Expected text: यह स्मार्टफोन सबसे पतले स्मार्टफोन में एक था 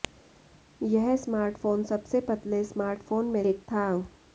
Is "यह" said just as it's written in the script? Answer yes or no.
yes